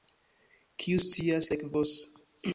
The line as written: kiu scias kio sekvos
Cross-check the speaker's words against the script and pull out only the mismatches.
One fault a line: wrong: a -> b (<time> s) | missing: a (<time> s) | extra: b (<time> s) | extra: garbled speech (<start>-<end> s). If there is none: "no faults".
missing: kio (1.5 s)